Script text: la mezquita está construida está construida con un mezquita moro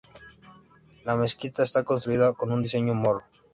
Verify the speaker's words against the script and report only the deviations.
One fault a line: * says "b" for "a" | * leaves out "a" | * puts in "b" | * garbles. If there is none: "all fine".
* leaves out "está construida"
* says "diseño" for "mezquita"